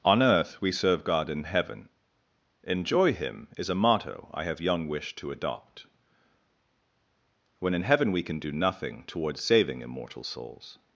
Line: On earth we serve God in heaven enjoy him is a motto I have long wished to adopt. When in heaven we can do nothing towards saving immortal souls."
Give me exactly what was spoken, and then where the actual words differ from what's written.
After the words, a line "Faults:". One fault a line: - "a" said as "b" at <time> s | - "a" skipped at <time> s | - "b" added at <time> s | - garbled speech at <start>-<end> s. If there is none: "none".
On earth we serve God in heaven enjoy him is a motto I have young wished to adopt. When in heaven we can do nothing towards saving immortal souls."
Faults:
- "long" said as "young" at 4.6 s